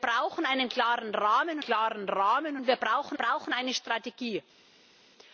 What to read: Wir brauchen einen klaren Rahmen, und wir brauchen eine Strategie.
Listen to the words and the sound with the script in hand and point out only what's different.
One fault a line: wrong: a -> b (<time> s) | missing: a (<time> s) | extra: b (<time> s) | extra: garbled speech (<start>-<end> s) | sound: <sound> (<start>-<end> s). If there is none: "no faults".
extra: klaren Rahmen (1.6 s)
extra: brauchen (3.1 s)